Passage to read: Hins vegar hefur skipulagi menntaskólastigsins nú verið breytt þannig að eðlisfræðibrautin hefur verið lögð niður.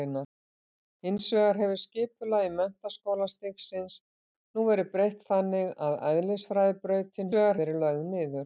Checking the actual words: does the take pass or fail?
fail